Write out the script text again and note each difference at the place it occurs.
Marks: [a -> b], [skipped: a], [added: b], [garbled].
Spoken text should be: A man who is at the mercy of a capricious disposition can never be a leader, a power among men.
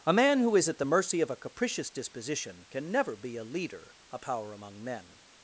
A man who is at the mercy of a capricious disposition can never be a leader, a power among men.